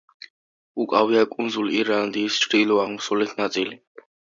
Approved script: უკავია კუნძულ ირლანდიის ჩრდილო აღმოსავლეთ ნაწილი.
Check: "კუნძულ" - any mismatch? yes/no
no